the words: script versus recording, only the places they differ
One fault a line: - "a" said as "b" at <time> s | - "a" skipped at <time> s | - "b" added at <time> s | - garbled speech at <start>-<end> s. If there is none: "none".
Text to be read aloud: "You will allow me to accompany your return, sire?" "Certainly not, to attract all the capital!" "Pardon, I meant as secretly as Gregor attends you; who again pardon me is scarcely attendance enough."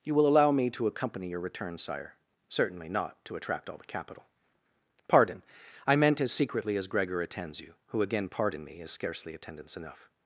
none